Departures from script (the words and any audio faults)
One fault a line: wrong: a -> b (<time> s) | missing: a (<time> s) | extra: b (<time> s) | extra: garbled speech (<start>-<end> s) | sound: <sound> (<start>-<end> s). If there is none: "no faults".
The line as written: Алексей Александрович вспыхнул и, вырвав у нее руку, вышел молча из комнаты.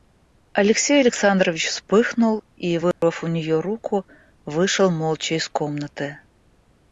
sound: dropout (2.9-3.0 s)